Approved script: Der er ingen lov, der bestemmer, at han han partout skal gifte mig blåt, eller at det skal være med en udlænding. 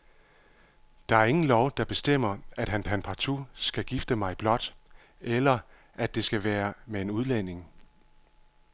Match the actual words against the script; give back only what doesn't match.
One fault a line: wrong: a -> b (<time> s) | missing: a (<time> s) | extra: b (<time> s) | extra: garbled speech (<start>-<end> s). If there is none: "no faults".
no faults